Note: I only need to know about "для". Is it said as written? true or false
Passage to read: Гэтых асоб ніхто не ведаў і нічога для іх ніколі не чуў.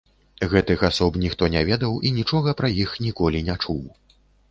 false